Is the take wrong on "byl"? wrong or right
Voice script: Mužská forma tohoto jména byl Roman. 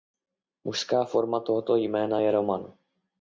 wrong